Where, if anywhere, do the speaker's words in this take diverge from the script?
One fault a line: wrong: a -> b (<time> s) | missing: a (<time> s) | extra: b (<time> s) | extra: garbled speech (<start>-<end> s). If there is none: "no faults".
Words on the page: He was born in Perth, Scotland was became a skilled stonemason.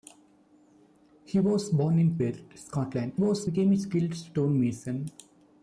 no faults